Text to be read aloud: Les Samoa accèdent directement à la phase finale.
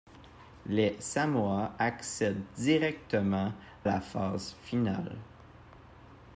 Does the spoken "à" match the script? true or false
false